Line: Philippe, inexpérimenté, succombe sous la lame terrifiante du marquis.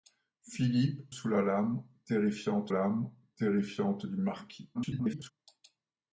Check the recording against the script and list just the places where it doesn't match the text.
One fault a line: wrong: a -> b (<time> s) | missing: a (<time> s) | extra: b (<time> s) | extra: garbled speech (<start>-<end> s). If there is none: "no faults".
wrong: inexpérimenté succombe sous la -> sous la lame terrifiante (1.1 s)
extra: garbled speech (4.7-5.3 s)